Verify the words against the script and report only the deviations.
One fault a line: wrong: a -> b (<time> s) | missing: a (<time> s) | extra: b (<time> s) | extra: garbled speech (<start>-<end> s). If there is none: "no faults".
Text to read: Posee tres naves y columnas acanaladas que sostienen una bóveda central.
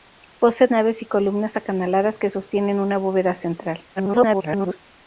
missing: tres (0.7 s)
extra: garbled speech (4.0-4.8 s)